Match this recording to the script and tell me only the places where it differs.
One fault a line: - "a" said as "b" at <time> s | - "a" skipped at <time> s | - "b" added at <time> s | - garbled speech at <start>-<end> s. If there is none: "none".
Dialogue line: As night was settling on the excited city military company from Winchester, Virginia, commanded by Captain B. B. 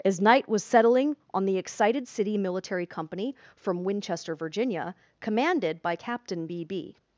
none